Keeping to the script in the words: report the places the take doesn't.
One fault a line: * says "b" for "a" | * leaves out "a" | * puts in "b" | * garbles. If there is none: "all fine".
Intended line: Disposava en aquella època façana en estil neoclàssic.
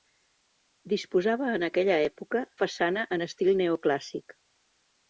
all fine